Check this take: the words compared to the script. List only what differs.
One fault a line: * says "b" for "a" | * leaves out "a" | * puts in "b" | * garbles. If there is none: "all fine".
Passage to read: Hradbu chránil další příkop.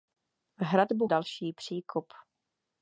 * leaves out "chránil"